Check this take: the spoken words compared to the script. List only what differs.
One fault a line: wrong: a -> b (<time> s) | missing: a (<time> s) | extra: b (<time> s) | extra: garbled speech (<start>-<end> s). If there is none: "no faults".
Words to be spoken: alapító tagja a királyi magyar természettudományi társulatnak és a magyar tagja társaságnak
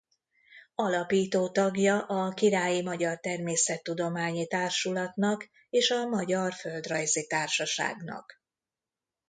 wrong: tagja -> földrajzi (6.5 s)